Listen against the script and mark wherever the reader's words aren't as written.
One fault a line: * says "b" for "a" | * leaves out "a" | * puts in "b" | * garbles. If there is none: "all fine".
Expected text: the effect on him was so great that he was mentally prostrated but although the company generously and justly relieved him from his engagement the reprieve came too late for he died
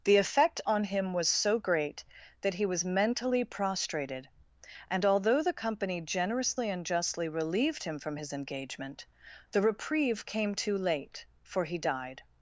* says "and" for "but"